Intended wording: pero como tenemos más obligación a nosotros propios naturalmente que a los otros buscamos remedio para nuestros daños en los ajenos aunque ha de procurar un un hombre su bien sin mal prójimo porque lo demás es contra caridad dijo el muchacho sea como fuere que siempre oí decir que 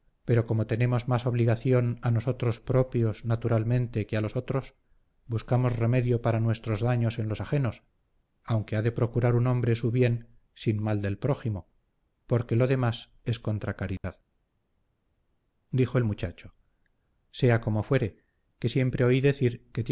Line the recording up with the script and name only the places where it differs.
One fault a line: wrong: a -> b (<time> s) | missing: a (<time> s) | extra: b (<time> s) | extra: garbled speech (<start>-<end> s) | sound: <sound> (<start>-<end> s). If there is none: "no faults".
missing: un (9.5 s)
extra: del (11.0 s)
sound: dropout (14.0-14.0 s)